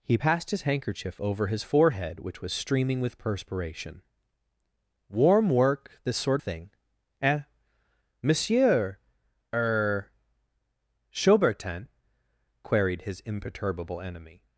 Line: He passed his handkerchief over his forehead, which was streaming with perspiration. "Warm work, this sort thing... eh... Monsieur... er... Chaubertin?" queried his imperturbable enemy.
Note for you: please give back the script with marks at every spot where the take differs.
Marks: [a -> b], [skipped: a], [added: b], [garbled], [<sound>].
He passed his handkerchief over his forehead, which was streaming with perspiration. "Warm work, this sort thing... eh... Monsieur... er... Chaubertin?" queried his imperturbable enemy.